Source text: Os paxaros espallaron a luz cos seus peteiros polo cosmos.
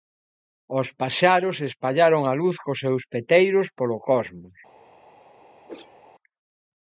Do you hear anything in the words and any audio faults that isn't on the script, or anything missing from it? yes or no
yes